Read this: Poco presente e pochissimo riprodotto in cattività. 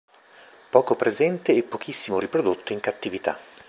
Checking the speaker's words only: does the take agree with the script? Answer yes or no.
yes